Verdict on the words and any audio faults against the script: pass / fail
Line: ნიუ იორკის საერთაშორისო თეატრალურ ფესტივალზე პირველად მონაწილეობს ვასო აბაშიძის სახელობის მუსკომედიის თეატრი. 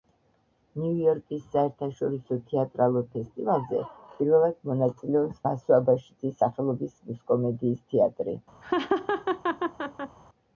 fail